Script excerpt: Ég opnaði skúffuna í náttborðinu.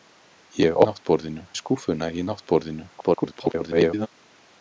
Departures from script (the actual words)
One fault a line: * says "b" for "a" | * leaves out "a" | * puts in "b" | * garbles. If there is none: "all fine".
* says "náttborðinu" for "opnaði"
* garbles